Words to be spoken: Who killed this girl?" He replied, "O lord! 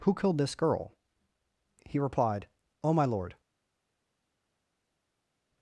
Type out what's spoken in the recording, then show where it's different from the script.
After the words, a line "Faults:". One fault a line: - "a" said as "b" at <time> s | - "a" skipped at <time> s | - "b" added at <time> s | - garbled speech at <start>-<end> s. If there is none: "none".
Who killed this girl?" He replied, "O my lord!
Faults:
- "my" added at 2.9 s